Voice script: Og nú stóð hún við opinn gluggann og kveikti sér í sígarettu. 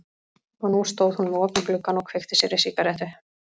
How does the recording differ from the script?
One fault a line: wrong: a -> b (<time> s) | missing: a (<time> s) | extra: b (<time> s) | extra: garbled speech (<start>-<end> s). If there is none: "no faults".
no faults